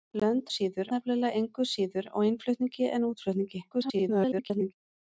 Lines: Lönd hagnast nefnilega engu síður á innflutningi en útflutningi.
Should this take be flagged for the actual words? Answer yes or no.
yes